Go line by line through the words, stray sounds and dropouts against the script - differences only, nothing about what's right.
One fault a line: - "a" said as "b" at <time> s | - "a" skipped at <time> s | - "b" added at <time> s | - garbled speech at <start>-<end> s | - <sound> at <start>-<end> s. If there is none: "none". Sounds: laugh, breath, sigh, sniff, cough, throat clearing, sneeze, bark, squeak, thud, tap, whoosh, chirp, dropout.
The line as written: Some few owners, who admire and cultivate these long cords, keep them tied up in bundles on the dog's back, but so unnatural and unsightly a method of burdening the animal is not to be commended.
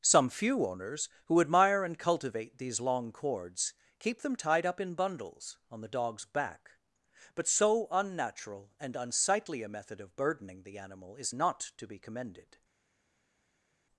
none